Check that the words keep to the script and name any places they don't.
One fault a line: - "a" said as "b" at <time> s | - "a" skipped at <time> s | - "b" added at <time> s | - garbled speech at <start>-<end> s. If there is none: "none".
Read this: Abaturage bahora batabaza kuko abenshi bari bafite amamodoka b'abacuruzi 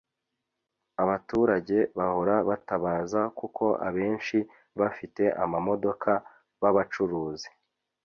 - "bari" skipped at 4.4 s